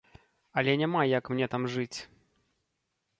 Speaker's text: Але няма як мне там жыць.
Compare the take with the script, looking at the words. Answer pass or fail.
pass